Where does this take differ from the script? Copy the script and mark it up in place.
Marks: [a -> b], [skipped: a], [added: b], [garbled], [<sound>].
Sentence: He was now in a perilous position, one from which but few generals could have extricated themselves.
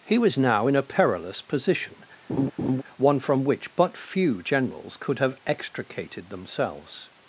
He was now in a perilous position, [laugh] one from which but few generals could have extricated themselves.